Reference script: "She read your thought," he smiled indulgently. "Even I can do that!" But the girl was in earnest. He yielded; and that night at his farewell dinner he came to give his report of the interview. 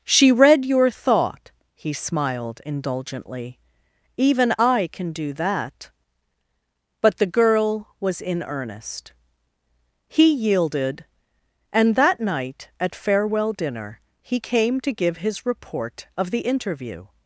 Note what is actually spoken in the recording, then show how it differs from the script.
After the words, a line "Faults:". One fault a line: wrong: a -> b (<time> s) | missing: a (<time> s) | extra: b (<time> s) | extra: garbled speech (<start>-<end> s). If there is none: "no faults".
"She read your thought," he smiled indulgently. "Even I can do that!" But the girl was in earnest. He yielded; and that night at farewell dinner he came to give his report of the interview.
Faults:
missing: his (12.9 s)